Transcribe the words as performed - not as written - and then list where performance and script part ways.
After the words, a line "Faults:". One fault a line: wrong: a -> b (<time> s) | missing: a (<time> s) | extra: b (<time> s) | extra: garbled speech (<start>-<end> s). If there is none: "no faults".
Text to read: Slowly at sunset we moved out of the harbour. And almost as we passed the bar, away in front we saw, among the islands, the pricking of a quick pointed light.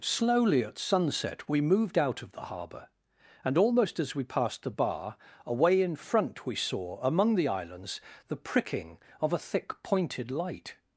Slowly at sunset we moved out of the harbour. And almost as we passed the bar, away in front we saw, among the islands, the pricking of a thick pointed light.
Faults:
wrong: quick -> thick (9.4 s)